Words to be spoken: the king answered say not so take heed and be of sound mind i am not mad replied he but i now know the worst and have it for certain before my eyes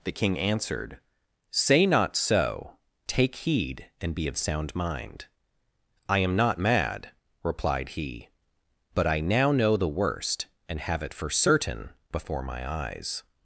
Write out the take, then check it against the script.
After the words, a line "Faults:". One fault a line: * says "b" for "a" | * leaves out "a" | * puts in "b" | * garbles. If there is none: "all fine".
the king answered say not so take heed and be of sound mind i am not mad replied he but i now know the worst and have it for certain before my eyes
Faults:
all fine